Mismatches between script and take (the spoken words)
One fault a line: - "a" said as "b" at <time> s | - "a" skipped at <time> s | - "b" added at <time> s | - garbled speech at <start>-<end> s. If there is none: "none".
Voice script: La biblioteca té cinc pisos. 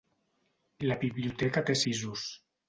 - "cinc" skipped at 1.8 s